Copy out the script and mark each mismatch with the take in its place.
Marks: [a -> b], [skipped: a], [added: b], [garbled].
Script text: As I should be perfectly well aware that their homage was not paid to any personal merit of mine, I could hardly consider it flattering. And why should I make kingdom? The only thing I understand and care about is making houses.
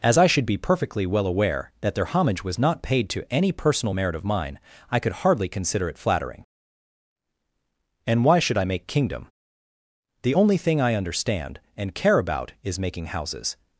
As I should be perfectly well aware that their homage was not paid to any personal merit of mine, I could hardly consider it flattering. And why should I make kingdom? The only thing I understand and care about is making houses.